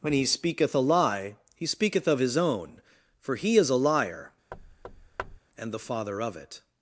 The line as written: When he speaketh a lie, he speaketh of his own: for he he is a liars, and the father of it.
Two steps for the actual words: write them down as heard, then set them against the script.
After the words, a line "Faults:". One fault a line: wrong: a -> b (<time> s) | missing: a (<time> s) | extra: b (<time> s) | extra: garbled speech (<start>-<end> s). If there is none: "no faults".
When he speaketh a lie, he speaketh of his own: for he is a liar, and the father of it.
Faults:
missing: he (3.5 s)
wrong: liars -> liar (3.8 s)